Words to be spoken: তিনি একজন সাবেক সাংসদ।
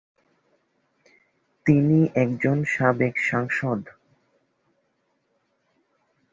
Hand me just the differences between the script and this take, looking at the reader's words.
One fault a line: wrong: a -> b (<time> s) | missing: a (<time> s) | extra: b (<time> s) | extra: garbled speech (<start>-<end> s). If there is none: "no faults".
no faults